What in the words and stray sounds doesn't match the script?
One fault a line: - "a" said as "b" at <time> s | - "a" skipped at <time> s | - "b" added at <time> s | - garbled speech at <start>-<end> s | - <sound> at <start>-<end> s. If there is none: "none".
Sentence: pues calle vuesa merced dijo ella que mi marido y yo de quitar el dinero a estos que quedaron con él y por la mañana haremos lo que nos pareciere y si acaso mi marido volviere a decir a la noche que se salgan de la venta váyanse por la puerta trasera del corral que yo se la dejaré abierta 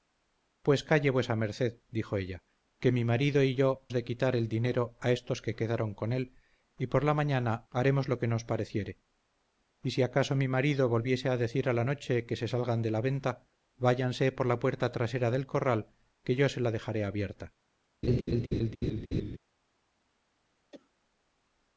- laugh at 18.0-19.4 s
- cough at 20.7-20.9 s